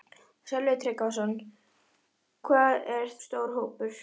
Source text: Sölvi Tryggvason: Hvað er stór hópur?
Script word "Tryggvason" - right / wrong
right